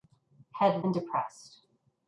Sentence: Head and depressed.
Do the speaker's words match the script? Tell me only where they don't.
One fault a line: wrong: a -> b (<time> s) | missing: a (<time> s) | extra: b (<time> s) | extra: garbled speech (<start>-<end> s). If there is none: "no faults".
no faults